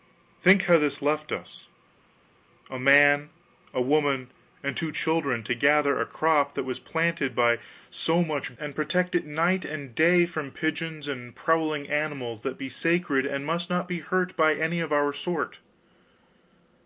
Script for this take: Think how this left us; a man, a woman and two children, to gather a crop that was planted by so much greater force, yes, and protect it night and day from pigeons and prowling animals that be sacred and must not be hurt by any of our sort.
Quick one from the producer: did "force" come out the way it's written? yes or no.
no